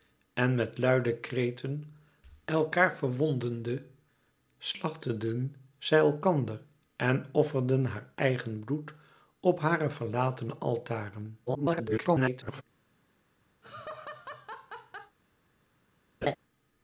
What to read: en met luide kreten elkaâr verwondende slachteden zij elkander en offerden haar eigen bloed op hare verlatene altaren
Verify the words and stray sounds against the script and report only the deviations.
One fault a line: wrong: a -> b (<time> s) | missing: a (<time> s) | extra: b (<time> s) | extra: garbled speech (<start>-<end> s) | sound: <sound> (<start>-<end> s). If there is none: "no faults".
extra: garbled speech (11.5-12.6 s)
sound: laugh (13.6-15.2 s)
sound: laugh (16.2-16.4 s)